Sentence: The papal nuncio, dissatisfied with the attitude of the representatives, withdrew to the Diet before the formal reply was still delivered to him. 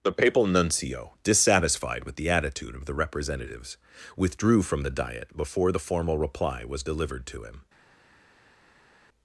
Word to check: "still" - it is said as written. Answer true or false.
false